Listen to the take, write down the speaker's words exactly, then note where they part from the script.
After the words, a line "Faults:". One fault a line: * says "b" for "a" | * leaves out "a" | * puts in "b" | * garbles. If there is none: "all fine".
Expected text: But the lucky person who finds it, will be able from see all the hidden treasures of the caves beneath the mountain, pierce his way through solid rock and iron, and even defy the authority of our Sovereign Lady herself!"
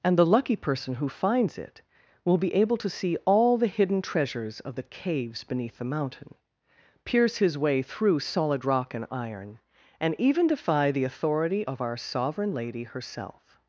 And the lucky person who finds it, will be able to see all the hidden treasures of the caves beneath the mountain, pierce his way through solid rock and iron, and even defy the authority of our Sovereign Lady herself!"
Faults:
* says "And" for "But"
* says "to" for "from"